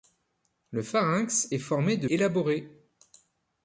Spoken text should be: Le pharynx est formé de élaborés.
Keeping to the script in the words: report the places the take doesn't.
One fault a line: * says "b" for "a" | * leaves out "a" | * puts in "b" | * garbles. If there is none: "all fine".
all fine